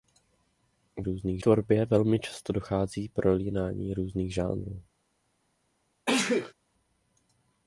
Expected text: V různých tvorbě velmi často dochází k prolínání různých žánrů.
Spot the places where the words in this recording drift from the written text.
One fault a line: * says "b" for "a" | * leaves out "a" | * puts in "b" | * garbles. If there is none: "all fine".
all fine